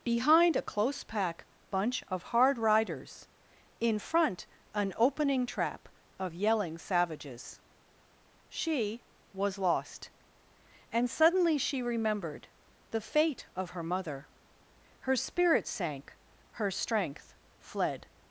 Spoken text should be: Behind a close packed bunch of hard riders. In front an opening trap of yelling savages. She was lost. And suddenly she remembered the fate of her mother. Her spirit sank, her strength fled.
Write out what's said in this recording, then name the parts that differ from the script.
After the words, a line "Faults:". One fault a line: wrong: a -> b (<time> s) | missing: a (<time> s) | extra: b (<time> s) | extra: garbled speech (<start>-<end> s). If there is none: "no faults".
Behind a close pack bunch of hard riders. In front an opening trap of yelling savages. She was lost. And suddenly she remembered the fate of her mother. Her spirit sank, her strength fled.
Faults:
wrong: packed -> pack (1.0 s)